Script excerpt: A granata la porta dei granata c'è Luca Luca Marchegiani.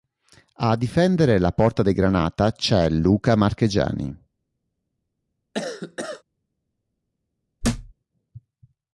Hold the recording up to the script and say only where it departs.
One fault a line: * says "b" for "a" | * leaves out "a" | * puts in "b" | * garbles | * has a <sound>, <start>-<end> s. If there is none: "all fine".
* says "difendere" for "granata"
* leaves out "Luca"
* has a cough, 5.5-6.2 s
* has a thud, 7.6-7.9 s